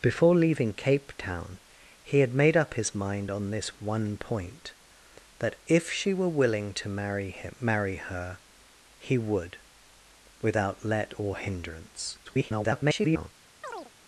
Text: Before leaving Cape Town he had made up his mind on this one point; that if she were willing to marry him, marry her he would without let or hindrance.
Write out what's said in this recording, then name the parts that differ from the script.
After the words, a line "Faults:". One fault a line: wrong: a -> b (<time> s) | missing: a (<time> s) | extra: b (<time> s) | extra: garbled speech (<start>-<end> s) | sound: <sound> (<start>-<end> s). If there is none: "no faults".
Before leaving Cape Town he had made up his mind on this one point; that if she were willing to marry him, marry her he would without let or hindrance. [garbled]
Faults:
extra: garbled speech (12.3-13.3 s)
sound: chirp (13.6-13.9 s)